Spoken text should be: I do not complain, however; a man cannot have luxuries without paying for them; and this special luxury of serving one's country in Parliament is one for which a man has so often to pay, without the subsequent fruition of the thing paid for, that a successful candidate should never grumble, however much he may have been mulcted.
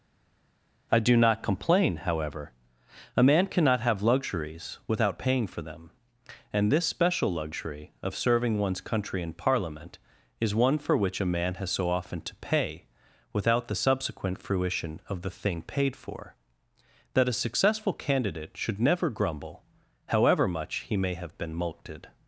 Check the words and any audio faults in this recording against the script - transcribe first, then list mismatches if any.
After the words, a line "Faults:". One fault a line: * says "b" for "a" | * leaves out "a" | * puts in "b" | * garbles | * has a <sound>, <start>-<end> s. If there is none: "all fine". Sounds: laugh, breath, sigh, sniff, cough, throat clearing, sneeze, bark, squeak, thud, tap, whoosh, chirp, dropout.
I do not complain, however; a man cannot have luxuries without paying for them; and this special luxury of serving one's country in Parliament is one for which a man has so often to pay, without the subsequent fruition of the thing paid for, that a successful candidate should never grumble, however much he may have been mulcted.
Faults:
all fine